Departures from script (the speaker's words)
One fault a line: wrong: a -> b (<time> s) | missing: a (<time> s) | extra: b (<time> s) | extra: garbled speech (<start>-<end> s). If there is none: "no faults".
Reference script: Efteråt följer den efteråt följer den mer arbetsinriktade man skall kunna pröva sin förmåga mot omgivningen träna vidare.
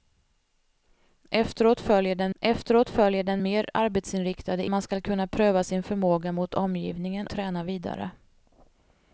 no faults